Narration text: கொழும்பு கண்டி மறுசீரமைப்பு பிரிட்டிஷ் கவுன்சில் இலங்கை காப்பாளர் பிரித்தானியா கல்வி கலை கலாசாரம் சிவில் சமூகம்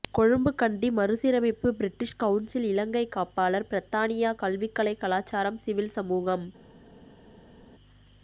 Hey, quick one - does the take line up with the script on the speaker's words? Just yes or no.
yes